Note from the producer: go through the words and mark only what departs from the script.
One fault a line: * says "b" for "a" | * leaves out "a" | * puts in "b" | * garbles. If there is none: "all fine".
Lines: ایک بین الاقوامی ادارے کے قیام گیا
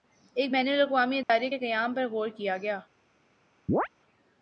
* puts in "پر غور کیا"